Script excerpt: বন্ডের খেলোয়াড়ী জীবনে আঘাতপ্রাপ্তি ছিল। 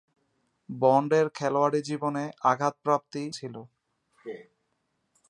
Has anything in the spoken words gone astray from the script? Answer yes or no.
no